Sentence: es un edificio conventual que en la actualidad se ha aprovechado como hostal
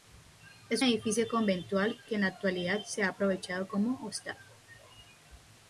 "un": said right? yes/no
no